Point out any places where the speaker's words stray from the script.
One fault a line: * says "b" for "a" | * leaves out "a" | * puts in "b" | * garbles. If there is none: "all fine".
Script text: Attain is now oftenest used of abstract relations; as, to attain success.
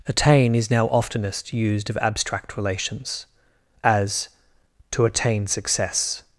all fine